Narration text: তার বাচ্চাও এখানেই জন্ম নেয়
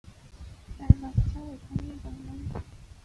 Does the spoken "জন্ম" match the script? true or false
false